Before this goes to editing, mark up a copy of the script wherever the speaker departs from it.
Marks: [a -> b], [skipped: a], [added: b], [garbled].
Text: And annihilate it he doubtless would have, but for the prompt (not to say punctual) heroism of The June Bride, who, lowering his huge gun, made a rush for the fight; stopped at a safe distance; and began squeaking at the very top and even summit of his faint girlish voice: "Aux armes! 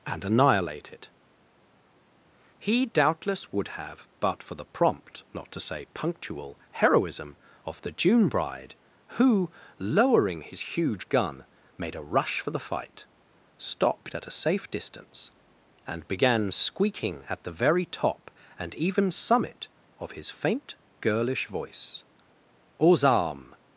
And annihilate it he doubtless would have, but for the prompt (not to say punctual) heroism of The June Bride, who, lowering his huge gun, made a rush for the fight; stopped at a safe distance; and began squeaking at the very top and even summit of his faint girlish voice: "Aux armes!